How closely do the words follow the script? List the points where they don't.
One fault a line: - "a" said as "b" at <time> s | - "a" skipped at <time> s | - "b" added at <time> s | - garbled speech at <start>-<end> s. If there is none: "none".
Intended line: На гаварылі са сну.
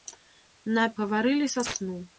none